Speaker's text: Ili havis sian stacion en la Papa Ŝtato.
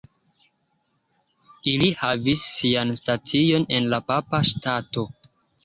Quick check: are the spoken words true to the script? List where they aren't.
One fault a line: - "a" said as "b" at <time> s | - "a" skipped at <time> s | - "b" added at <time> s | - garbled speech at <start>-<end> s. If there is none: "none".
none